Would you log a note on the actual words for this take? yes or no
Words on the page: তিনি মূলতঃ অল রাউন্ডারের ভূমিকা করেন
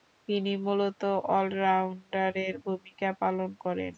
yes